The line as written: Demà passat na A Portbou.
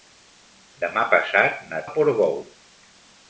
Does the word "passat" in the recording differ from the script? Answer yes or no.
no